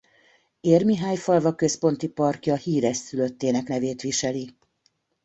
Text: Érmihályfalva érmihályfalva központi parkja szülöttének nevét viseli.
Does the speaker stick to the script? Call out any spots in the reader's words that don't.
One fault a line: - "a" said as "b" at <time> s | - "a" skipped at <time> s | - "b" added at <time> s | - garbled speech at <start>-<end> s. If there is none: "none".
- "érmihályfalva" skipped at 1.6 s
- "híres" added at 2.5 s